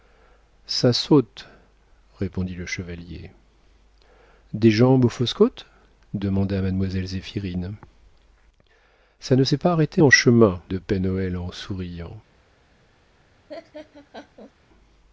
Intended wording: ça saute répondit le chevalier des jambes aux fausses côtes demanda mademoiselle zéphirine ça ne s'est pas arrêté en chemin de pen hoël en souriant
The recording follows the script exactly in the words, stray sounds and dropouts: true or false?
false